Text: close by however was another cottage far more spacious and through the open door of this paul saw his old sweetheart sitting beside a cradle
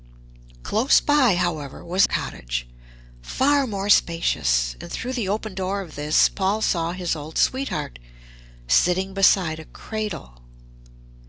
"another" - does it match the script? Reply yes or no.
no